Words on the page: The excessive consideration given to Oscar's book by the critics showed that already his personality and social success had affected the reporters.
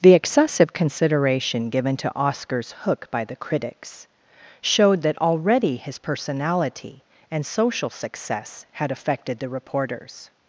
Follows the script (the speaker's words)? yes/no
no